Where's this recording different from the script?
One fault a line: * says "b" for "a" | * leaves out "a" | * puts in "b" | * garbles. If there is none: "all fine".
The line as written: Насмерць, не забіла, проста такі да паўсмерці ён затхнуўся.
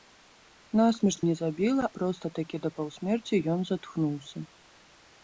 all fine